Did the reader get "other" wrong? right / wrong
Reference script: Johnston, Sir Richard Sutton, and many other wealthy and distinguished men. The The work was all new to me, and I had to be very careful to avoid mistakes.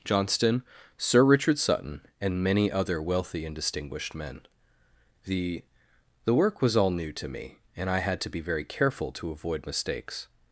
right